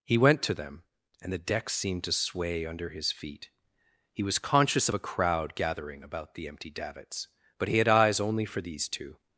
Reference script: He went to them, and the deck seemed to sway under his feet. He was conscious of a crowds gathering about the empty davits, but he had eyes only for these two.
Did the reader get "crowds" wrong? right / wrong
wrong